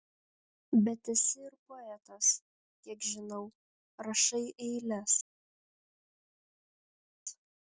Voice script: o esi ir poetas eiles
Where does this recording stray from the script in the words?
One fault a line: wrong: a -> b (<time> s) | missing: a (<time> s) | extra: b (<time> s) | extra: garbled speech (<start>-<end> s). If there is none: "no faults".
wrong: o -> bet (0.8 s)
extra: kiek žinau rašai (2.8 s)